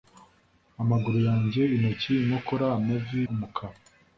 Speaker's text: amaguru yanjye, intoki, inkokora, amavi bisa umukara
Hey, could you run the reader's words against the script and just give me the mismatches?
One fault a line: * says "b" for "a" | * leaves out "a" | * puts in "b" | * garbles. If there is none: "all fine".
* leaves out "bisa"